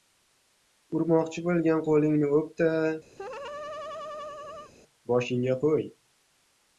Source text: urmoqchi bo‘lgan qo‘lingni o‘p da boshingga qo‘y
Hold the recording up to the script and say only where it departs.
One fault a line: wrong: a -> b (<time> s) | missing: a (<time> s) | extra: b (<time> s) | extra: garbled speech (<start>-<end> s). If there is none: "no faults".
no faults